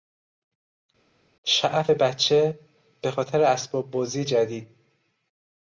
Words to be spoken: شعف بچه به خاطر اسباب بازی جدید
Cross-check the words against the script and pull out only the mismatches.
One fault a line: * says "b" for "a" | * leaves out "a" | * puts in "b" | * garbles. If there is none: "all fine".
all fine